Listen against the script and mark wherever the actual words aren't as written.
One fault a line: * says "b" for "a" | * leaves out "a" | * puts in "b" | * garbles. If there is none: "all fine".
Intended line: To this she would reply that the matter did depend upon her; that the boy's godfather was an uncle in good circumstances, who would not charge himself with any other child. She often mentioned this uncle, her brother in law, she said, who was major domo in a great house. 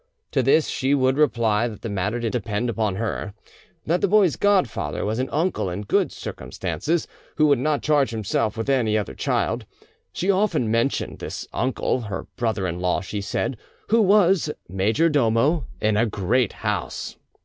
all fine